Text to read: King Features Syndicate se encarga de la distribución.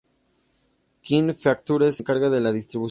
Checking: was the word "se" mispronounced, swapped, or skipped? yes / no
yes